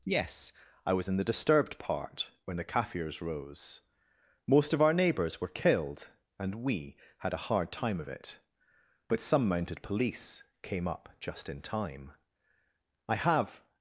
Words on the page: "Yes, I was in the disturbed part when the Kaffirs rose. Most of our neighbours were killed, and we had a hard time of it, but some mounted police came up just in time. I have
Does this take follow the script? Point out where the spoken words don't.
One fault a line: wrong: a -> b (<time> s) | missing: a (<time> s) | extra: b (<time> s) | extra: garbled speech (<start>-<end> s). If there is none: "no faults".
no faults